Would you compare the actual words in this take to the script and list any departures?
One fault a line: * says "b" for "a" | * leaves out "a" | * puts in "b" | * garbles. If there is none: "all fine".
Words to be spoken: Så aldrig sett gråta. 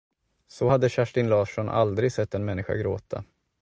* puts in "hade Kerstin Larsson"
* puts in "en människa"